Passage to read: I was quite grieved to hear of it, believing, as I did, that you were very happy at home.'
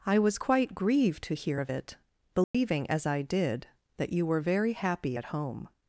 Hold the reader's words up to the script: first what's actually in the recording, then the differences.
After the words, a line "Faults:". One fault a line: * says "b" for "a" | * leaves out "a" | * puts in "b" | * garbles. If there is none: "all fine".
I was quite grieved to hear of it, believing, as I did, that you were very happy at home.'
Faults:
all fine